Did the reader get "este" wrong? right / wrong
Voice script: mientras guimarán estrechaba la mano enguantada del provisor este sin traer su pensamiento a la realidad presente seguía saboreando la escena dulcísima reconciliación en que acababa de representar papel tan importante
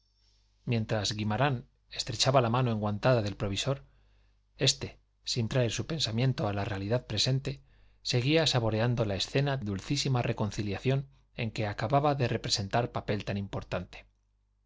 right